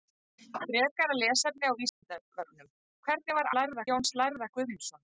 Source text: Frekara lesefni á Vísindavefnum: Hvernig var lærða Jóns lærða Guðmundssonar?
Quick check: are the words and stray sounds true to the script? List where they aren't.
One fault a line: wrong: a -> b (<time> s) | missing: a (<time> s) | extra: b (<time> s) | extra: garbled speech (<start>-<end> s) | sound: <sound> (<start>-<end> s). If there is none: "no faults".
sound: dropout (1.9-2.0 s)